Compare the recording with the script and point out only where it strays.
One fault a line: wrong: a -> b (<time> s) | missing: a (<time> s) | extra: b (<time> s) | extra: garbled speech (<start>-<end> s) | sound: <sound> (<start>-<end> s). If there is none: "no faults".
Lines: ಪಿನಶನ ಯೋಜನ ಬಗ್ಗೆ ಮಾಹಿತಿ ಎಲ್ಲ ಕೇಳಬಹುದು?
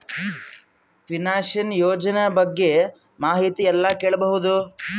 no faults